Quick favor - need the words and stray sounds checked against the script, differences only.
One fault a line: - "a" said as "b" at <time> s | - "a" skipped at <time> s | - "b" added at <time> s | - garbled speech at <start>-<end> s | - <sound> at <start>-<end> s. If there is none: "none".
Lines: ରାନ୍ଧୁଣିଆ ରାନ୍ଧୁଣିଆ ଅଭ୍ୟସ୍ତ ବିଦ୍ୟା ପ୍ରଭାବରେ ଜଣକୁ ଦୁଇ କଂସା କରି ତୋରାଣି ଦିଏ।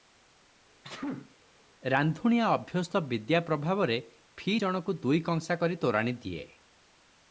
- sneeze at 0.8-1.4 s
- "ରାନ୍ଧୁଣିଆ" skipped at 2.5 s
- "ଫି" added at 4.4 s